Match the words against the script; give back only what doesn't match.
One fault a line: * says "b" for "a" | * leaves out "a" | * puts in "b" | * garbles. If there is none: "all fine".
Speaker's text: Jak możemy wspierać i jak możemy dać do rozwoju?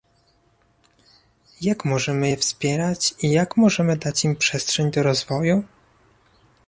* puts in "je"
* puts in "im przestrzeń"